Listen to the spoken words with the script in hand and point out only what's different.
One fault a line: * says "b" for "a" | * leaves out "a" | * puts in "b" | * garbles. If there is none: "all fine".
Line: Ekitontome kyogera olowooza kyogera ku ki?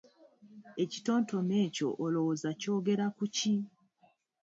* says "ekyo" for "kyogera"